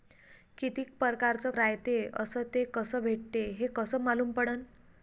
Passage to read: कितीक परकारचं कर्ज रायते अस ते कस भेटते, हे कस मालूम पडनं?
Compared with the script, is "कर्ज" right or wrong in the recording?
wrong